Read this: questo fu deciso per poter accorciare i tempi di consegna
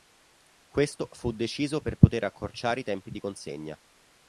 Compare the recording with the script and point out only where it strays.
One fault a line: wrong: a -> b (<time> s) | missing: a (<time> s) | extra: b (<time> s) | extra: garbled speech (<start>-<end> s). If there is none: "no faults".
no faults